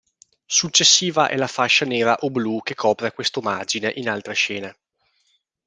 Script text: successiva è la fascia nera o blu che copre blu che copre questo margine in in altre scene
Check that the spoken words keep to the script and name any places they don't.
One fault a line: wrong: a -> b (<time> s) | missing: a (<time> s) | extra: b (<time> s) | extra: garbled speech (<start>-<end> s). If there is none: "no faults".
missing: blu che copre (3.1 s)
missing: in (4.1 s)